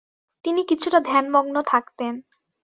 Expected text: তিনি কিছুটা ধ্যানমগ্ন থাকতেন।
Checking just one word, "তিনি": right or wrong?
right